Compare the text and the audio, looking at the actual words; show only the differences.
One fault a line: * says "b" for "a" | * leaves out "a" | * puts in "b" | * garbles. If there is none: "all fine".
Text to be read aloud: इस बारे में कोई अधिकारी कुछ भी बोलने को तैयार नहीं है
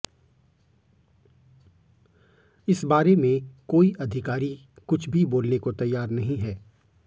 all fine